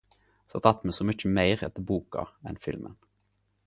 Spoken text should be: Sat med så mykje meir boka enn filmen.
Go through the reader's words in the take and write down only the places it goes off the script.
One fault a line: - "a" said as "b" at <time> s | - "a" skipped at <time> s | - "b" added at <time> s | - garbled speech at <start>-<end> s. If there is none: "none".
- "att" added at 0.7 s
- "etter" added at 1.7 s